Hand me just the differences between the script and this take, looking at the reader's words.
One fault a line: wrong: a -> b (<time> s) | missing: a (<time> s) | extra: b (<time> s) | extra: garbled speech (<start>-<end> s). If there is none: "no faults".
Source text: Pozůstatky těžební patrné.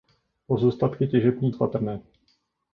no faults